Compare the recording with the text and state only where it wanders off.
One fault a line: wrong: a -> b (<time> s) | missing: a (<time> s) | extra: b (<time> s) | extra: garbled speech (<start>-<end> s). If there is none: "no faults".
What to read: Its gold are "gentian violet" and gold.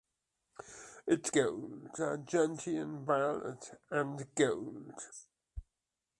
no faults